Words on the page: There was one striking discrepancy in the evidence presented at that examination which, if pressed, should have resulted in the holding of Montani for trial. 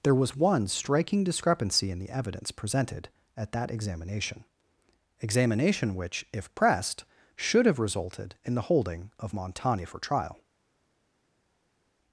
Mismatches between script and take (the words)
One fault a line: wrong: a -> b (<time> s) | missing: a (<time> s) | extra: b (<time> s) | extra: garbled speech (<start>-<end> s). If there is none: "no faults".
extra: examination (5.2 s)